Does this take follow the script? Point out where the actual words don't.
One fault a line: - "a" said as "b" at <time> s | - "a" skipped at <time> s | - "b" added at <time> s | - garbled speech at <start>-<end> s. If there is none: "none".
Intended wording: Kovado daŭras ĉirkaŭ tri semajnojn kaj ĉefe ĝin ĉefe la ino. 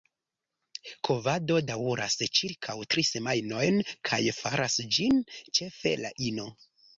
- "ĉefe" said as "faras" at 4.4 s